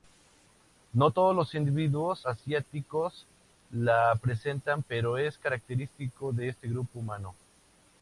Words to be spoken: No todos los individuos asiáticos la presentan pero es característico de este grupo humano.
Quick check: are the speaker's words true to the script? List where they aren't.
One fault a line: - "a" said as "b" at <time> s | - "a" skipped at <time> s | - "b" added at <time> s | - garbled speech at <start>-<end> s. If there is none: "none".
none